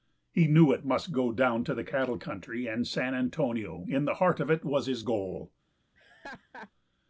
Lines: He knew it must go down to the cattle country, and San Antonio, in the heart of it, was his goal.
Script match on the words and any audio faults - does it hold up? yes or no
no